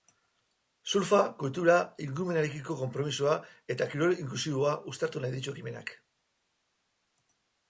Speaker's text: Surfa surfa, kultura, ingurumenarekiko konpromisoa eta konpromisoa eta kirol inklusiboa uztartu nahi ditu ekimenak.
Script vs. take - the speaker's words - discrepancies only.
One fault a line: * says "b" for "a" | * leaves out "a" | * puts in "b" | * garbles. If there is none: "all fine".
* leaves out "surfa"
* leaves out "konpromisoa eta"